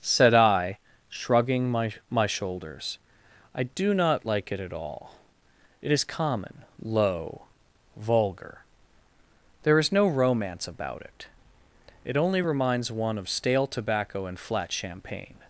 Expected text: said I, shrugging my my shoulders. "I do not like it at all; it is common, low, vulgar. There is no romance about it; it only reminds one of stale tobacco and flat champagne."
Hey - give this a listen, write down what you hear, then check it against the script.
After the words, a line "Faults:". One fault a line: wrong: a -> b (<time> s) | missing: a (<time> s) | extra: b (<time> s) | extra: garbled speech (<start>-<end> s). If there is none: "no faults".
said I, shrugging my my shoulders. "I do not like it at all; it is common, low, vulgar. There is no romance about it; it only reminds one of stale tobacco and flat champagne."
Faults:
no faults